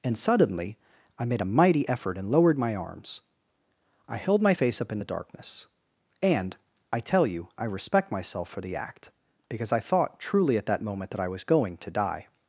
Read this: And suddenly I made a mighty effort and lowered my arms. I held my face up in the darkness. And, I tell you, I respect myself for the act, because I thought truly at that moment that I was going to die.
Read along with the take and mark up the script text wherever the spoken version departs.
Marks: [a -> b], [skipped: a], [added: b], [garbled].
And suddenly I made a mighty effort and lowered my arms. I held my face up in the darkness. And, I tell you, I respect myself for the act, because I thought truly at that moment that I was going to die.